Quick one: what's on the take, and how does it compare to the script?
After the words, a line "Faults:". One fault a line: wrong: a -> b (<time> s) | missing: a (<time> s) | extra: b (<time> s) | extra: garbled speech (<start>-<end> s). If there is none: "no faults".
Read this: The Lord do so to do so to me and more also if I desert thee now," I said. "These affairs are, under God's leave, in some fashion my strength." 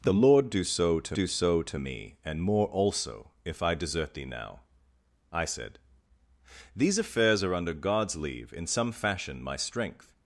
The Lord do so to do so to me and more also if I desert thee now," I said. "These affairs are, under God's leave, in some fashion my strength."
Faults:
no faults